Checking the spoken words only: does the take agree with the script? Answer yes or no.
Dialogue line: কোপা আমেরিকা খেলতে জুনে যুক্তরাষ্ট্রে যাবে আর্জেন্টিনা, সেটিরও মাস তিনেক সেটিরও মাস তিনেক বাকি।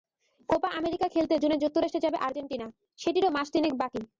no